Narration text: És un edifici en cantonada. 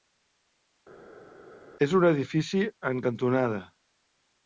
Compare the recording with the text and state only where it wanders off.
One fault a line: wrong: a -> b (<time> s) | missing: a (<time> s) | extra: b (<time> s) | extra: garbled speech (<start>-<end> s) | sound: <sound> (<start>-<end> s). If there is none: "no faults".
no faults